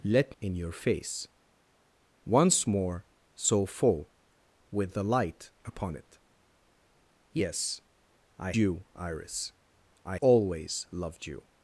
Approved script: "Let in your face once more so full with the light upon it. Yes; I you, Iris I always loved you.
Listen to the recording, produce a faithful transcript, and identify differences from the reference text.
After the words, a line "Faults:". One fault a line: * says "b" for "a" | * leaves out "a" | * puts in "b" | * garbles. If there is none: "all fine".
"Let in your face once more so full with the light upon it. Yes; I you, Iris I always loved you.
Faults:
all fine